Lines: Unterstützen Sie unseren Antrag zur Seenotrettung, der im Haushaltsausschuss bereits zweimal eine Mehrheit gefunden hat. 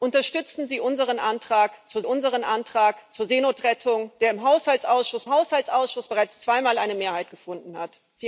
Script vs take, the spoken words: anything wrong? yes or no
yes